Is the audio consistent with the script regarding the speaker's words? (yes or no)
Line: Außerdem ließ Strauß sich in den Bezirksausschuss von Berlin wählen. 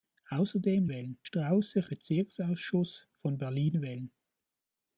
no